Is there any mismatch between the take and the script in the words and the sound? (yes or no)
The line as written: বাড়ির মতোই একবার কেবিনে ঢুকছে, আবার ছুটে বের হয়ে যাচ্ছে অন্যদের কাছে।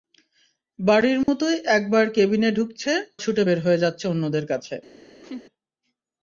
yes